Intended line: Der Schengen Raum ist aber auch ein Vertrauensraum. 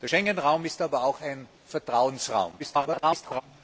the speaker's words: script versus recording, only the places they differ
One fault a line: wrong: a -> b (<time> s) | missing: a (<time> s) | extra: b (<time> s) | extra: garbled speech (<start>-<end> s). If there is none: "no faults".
extra: garbled speech (2.6-3.4 s)